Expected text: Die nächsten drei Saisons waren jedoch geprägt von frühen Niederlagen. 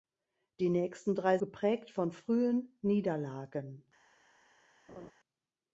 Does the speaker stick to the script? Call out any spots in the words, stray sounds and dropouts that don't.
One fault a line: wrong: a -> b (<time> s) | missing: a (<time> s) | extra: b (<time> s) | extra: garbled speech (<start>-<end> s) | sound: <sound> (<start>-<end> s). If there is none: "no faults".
missing: Saisons waren jedoch (1.4 s)
sound: laugh (4.9-5.1 s)